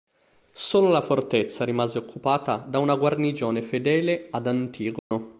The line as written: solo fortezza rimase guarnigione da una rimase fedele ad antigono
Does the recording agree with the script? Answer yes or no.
no